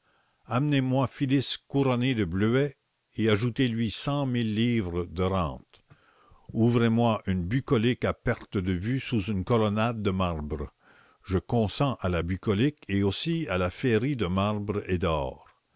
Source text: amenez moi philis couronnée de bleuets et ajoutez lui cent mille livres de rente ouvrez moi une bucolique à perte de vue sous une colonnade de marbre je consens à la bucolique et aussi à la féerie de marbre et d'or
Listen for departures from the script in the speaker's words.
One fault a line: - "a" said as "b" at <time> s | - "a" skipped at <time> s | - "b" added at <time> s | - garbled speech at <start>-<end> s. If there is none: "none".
none